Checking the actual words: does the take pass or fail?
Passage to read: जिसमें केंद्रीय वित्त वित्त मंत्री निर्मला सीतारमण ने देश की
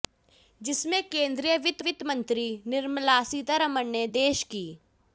pass